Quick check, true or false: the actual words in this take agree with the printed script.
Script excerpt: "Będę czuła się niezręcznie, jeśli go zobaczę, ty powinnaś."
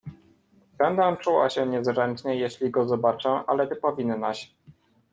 false